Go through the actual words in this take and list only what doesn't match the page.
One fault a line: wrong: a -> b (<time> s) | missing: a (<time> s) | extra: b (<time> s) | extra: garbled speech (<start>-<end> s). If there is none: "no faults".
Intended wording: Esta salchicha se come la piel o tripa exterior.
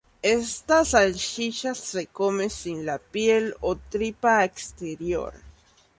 extra: sin (2.5 s)